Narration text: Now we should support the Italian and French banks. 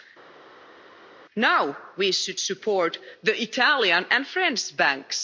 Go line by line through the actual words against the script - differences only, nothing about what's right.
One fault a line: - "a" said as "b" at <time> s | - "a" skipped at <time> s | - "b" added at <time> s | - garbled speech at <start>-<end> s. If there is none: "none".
none